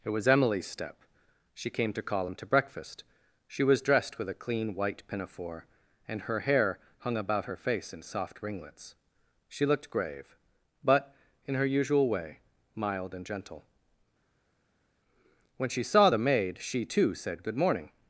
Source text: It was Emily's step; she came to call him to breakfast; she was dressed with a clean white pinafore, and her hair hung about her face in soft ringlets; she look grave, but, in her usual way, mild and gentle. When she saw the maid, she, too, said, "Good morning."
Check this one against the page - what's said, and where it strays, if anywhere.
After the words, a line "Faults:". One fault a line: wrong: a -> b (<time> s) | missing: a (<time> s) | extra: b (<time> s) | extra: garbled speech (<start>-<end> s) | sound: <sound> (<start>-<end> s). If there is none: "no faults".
It was Emily's step; she came to call him to breakfast; she was dressed with a clean white pinafore, and her hair hung about her face in soft ringlets; she looked grave, but, in her usual way, mild and gentle. When she saw the maid, she, too, said, "Good morning."
Faults:
wrong: look -> looked (9.7 s)